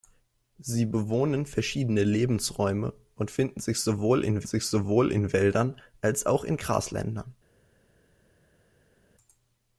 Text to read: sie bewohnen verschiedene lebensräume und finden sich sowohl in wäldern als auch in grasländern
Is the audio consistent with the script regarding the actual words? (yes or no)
no